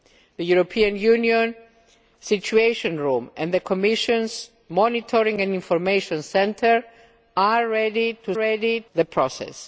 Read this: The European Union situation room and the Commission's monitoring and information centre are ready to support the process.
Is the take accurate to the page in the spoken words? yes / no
no